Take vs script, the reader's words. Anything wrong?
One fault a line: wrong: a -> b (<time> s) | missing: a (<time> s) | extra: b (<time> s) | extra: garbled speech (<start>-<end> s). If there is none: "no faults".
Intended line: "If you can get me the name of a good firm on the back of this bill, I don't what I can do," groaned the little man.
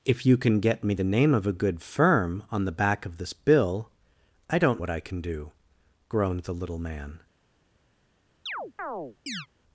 no faults